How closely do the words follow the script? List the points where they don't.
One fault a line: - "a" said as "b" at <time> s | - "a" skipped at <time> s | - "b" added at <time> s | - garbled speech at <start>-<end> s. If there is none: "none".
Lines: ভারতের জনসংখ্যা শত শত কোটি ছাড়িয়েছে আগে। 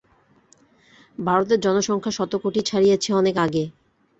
- "শত" skipped at 2.3 s
- "অনেক" added at 3.1 s